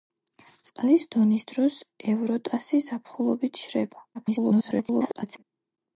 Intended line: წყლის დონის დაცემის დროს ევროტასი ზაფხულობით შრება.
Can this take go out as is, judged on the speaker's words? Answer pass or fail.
fail